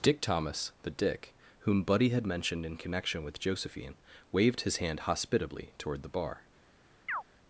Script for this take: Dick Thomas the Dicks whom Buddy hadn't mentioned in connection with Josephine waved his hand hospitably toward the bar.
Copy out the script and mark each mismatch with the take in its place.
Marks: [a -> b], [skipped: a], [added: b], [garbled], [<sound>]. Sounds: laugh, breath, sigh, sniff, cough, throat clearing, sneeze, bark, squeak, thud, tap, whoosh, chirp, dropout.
Dick Thomas the [Dicks -> Dick] whom Buddy [hadn't -> had] mentioned in connection with Josephine waved his hand hospitably toward the bar. [chirp]